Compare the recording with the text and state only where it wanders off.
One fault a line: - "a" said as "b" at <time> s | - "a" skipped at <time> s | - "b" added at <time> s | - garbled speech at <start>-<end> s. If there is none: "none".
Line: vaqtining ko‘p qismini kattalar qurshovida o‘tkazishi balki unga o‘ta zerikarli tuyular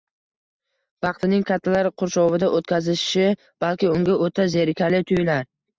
- "ko‘p qismini" skipped at 1.4 s